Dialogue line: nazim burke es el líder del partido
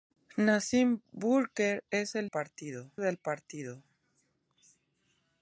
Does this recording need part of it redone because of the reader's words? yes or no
yes